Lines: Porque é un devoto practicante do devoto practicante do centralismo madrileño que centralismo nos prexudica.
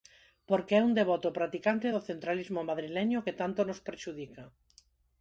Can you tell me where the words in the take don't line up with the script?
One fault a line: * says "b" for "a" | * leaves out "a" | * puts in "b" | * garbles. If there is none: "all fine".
* leaves out "devoto practicante do"
* says "tanto" for "centralismo"